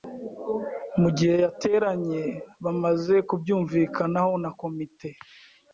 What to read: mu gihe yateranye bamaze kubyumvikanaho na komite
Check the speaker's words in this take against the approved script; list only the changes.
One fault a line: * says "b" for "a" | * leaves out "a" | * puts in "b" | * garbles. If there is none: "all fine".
all fine